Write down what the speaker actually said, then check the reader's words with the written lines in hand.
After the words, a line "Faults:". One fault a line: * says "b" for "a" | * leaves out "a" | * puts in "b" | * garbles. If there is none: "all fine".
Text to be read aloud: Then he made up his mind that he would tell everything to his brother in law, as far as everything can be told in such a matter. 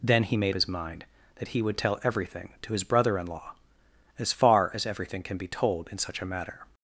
Then he made his mind that he would tell everything to his brother in law, as far as everything can be told in such a matter.
Faults:
* leaves out "up"